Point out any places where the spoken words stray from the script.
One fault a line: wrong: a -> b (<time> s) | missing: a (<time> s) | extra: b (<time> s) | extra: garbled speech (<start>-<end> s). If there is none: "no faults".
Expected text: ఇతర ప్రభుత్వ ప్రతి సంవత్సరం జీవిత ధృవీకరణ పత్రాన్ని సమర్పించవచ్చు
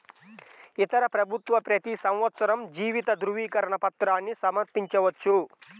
no faults